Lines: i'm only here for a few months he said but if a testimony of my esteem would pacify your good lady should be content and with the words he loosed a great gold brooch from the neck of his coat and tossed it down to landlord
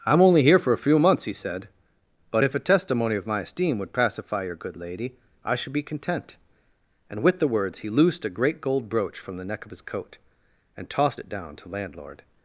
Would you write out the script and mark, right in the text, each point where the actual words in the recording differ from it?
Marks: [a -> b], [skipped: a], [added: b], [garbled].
i'm only here for a few months he said but if a testimony of my esteem would pacify your good lady [added: i] should be content and with the words he loosed a great gold brooch from the neck of his coat and tossed it down to landlord